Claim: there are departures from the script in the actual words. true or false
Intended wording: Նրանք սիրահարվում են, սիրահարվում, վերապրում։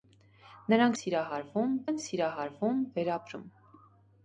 false